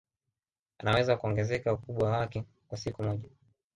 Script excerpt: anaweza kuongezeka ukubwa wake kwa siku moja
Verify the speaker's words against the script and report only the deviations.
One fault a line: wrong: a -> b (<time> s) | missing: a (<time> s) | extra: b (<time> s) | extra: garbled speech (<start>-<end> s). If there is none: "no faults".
no faults